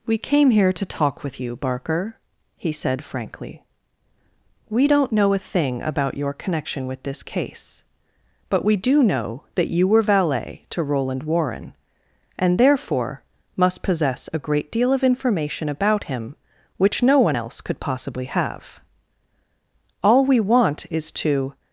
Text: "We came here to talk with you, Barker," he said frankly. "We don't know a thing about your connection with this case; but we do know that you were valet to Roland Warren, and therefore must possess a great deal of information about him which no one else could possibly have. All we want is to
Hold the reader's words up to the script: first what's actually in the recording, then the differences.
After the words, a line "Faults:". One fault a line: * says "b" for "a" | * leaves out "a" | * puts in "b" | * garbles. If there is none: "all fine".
"We came here to talk with you, Barker," he said frankly. "We don't know a thing about your connection with this case; but we do know that you were valet to Roland Warren, and therefore must possess a great deal of information about him which no one else could possibly have. All we want is to
Faults:
all fine